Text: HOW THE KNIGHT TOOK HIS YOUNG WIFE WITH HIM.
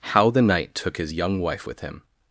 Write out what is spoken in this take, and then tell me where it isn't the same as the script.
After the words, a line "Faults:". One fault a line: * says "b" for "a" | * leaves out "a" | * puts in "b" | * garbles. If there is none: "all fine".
HOW THE KNIGHT TOOK HIS YOUNG WIFE WITH HIM.
Faults:
all fine